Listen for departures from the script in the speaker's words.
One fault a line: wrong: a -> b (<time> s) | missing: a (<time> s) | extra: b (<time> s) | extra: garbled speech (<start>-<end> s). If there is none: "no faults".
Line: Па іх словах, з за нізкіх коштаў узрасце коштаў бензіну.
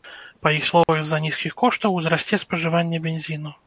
wrong: коштаў -> спажыванне (2.5 s)